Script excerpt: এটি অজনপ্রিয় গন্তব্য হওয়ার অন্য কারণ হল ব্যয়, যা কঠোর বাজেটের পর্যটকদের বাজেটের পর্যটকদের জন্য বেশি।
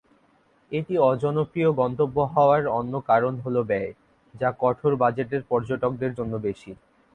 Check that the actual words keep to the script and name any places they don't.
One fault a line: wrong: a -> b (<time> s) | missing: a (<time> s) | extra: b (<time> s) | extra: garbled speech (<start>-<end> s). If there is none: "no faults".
missing: বাজেটের পর্যটকদের (6.1 s)